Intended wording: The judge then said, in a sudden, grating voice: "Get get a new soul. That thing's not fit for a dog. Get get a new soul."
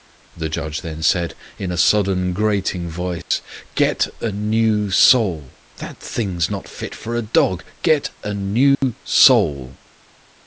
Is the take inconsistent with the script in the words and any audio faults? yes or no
yes